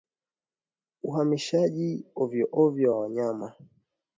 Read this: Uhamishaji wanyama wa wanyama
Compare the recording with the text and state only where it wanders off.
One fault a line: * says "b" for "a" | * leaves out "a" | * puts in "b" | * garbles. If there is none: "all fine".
* says "ovyoovyo" for "wanyama"